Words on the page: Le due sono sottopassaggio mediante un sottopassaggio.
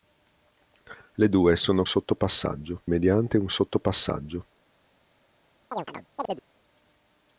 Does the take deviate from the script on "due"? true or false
false